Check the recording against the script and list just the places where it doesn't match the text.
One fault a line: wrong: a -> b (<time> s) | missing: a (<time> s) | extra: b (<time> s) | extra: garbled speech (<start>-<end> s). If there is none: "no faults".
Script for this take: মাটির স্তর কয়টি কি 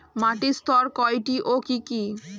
extra: ও কি (1.4 s)